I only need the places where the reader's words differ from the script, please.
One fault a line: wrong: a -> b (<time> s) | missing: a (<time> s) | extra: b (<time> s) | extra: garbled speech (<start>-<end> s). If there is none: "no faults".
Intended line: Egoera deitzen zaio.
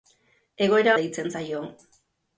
no faults